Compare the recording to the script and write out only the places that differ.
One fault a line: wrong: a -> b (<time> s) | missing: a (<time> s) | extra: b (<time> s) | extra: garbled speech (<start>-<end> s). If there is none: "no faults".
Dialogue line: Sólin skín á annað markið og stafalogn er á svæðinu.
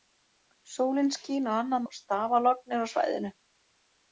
missing: markið (1.9 s)